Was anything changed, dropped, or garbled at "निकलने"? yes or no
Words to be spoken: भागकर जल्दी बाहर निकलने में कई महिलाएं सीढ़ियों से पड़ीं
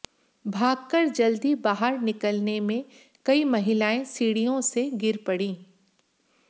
no